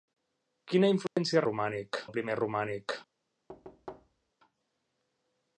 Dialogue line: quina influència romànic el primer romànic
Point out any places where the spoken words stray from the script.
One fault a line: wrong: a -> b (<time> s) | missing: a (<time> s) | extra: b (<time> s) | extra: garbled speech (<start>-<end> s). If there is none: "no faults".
no faults